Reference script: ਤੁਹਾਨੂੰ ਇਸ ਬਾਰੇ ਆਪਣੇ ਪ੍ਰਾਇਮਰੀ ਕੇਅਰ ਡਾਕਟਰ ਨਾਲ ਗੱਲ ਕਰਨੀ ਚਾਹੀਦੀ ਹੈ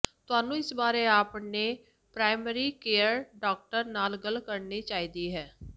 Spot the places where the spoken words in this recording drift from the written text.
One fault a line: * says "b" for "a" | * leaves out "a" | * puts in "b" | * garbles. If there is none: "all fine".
all fine